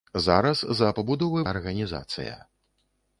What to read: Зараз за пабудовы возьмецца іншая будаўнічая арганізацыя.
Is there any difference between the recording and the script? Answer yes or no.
yes